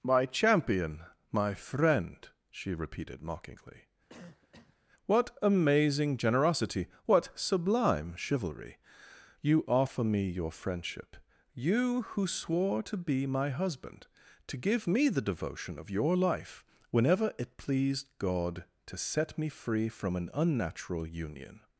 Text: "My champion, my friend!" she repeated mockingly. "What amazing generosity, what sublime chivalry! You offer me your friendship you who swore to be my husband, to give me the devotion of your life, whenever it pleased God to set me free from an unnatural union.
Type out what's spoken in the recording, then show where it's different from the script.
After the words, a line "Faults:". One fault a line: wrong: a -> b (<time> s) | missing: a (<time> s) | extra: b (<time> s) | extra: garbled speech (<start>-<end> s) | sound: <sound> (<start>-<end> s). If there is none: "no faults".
"My champion, my friend!" she repeated mockingly. "What amazing generosity, what sublime chivalry! You offer me your friendship you who swore to be my husband, to give me the devotion of your life, whenever it pleased God to set me free from an unnatural union.
Faults:
sound: cough (4.1-4.8 s)